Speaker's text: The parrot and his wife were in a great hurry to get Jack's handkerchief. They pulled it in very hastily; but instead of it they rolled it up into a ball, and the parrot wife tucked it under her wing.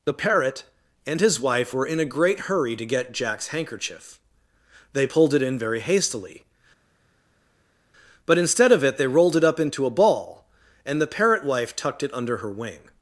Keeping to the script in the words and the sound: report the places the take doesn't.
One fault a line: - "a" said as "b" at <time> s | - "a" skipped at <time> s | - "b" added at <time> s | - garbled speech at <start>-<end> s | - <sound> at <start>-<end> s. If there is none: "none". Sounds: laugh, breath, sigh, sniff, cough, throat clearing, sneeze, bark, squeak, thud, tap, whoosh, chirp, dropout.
none